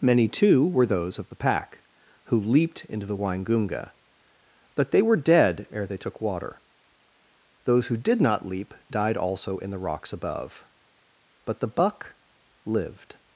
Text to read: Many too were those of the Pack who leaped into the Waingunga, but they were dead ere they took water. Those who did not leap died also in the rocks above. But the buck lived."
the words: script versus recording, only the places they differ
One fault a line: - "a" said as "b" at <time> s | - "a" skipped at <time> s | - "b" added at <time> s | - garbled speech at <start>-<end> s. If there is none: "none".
none